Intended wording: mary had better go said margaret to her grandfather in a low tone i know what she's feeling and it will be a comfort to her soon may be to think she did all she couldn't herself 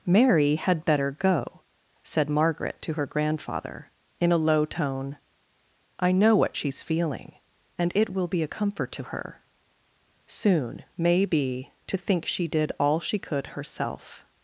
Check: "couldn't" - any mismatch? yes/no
yes